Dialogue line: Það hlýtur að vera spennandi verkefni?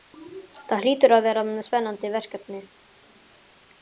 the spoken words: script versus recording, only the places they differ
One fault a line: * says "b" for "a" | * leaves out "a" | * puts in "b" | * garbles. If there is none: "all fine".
all fine